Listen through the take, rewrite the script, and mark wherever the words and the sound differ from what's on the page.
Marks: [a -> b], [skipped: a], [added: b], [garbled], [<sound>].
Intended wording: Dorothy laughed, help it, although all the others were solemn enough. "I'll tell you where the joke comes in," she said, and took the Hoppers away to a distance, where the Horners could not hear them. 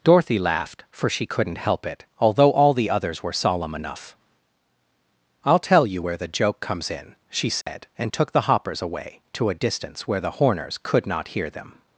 Dorothy laughed, [added: for she couldn't] help it, although all the others were solemn enough. "I'll tell you where the joke comes in," she said, [dropout] and took the Hoppers away to a distance, where the Horners could not hear them.